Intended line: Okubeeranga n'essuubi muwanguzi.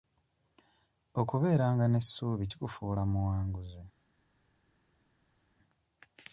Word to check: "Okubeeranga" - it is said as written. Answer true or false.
true